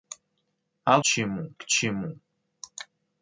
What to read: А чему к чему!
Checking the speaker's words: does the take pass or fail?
pass